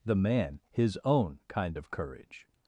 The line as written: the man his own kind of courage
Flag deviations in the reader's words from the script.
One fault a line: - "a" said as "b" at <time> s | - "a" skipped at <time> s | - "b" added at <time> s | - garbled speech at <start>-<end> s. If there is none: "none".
none